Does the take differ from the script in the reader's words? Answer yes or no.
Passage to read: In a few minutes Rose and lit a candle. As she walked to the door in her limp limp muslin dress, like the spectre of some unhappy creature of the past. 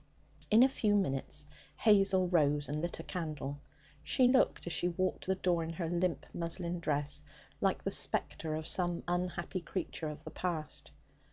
yes